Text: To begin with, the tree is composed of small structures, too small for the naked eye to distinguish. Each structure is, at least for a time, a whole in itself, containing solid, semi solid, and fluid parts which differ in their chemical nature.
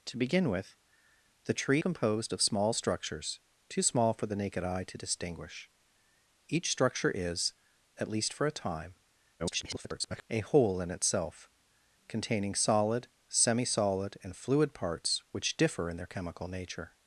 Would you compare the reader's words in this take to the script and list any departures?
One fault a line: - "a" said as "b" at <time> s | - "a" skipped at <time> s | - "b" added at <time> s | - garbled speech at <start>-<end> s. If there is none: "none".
- "is" skipped at 1.8 s
- garbled speech at 9.4-10.3 s